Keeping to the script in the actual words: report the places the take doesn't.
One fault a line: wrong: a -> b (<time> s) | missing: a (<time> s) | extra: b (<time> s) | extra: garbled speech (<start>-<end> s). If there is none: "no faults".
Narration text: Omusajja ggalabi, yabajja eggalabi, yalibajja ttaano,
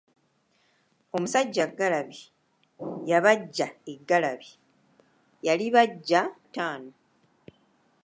no faults